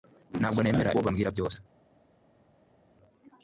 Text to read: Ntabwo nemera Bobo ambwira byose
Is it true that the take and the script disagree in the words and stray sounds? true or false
false